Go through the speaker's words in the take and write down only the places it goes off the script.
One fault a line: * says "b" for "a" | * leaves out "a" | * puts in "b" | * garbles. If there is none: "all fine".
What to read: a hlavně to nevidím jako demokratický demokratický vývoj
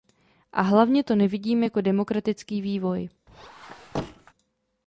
* leaves out "demokratický"